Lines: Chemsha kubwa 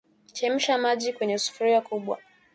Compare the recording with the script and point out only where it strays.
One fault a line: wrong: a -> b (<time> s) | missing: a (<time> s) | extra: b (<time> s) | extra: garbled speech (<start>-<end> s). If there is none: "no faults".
extra: maji kwenye sufuria (0.8 s)